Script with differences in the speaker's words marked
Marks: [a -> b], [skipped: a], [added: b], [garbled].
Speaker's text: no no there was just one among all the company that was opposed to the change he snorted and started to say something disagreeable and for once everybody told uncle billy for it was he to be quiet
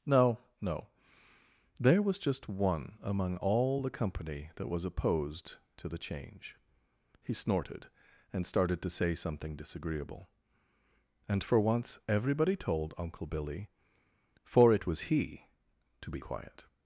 no no there was just one among all the company that was opposed to the change he snorted and started to say something disagreeable and for once everybody told uncle billy for it was he to be quiet